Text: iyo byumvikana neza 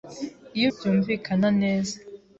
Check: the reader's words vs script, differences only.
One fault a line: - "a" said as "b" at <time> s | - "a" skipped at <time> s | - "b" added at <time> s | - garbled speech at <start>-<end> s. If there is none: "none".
none